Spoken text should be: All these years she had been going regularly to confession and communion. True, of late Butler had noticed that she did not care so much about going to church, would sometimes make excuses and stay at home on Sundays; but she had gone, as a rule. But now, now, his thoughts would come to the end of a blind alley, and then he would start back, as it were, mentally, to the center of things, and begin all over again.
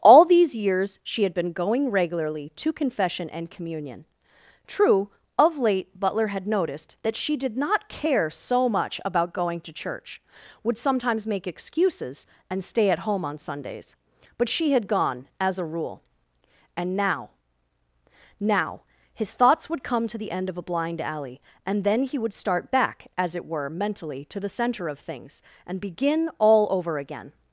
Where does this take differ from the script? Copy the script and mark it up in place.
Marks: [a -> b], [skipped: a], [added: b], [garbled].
All these years she had been going regularly to confession and communion. True, of late Butler had noticed that she did not care so much about going to church, would sometimes make excuses and stay at home on Sundays; but she had gone, as a rule. [But -> And] now, now, his thoughts would come to the end of a blind alley, and then he would start back, as it were, mentally, to the center of things, and begin all over again.